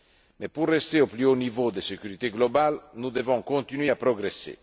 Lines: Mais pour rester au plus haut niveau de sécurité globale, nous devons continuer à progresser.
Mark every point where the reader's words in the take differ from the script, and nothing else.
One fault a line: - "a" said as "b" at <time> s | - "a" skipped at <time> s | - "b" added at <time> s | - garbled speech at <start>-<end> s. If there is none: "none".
none